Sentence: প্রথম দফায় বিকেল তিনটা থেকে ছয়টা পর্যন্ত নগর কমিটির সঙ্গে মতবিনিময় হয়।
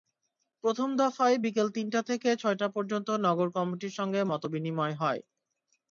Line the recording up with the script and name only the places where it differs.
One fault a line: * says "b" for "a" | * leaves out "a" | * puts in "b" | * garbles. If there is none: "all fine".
all fine